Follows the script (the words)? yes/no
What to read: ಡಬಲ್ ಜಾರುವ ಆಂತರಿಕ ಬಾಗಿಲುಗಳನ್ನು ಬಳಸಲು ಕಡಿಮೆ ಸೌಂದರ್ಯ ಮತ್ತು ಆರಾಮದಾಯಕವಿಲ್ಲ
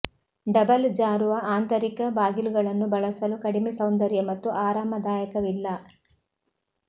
yes